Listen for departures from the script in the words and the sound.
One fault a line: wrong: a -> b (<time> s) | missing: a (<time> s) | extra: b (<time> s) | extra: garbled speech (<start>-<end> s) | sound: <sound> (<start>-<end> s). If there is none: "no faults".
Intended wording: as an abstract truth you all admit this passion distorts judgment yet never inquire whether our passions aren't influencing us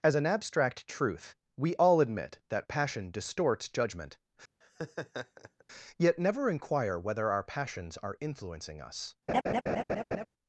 wrong: you -> we (1.6 s)
wrong: this -> that (2.5 s)
sound: laugh (4.6-5.6 s)
wrong: aren't -> are (8.0 s)
sound: laugh (9.3-10.3 s)